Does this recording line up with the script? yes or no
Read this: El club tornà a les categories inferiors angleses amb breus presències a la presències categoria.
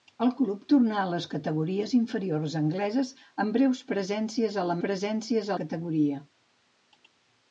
yes